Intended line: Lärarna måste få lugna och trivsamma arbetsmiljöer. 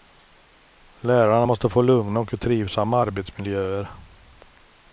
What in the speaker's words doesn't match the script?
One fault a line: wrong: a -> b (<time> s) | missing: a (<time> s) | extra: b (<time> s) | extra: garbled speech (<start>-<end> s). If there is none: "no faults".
no faults